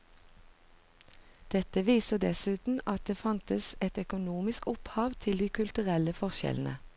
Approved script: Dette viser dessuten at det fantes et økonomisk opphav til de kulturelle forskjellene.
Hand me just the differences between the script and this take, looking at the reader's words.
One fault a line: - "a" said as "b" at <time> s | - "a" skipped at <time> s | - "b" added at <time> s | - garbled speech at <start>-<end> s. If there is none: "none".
none